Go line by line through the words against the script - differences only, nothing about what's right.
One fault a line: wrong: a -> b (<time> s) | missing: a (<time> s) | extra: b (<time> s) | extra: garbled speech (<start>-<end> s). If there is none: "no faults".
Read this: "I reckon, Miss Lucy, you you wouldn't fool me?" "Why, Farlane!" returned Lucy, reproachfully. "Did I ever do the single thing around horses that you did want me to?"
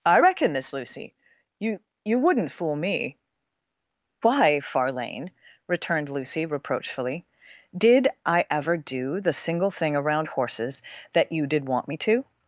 no faults